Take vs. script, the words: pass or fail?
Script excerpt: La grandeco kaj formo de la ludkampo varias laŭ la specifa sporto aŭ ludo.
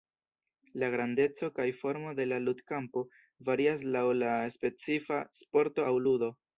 pass